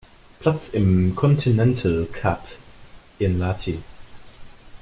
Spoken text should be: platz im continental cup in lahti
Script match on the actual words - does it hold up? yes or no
yes